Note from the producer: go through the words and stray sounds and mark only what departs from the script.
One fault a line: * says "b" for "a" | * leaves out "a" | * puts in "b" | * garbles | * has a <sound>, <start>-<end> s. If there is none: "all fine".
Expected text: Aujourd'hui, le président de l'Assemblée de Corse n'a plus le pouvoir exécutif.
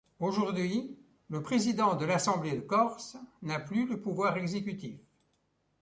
all fine